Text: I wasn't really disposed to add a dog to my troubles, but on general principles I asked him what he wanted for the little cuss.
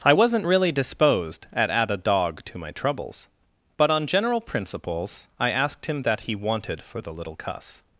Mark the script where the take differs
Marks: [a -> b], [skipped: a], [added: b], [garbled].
I wasn't really disposed [to -> at] add a dog to my troubles, but on general principles I asked him [what -> that] he wanted for the little cuss.